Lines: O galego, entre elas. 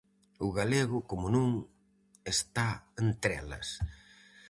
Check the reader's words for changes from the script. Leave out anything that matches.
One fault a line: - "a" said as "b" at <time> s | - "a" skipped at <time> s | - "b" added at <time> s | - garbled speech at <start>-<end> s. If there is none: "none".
- "como non está" added at 1.1 s